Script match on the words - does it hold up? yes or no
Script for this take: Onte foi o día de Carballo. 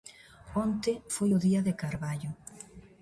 yes